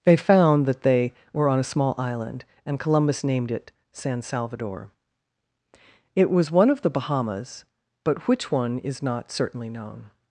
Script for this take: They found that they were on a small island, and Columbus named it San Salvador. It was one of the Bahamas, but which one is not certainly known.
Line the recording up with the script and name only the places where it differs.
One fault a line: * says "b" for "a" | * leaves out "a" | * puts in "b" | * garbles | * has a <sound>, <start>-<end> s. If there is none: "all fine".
all fine